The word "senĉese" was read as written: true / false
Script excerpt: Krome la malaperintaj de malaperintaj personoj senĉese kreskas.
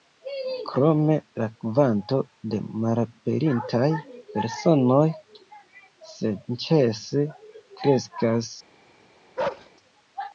true